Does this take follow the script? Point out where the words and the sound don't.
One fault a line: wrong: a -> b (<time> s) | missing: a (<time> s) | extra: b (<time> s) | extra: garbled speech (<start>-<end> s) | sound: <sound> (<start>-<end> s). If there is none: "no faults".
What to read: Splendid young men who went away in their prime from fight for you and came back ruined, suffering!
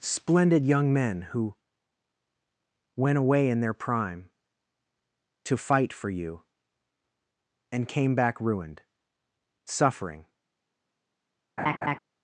wrong: from -> to (5.4 s)
sound: laugh (11.6-12.0 s)